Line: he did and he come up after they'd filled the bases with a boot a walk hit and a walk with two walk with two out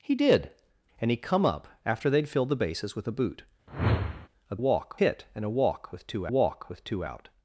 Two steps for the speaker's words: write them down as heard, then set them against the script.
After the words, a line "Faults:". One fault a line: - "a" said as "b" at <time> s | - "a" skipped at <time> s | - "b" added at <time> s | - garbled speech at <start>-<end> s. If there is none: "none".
he did and he come up after they'd filled the bases with a boot a walk hit and a walk with two walk with two out
Faults:
none